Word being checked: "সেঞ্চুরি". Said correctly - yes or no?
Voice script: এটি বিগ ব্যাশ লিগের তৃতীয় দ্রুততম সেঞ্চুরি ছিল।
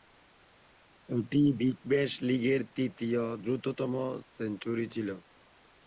yes